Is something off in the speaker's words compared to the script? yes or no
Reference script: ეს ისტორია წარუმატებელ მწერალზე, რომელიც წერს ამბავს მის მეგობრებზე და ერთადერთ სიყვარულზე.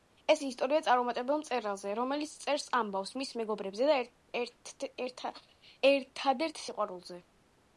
no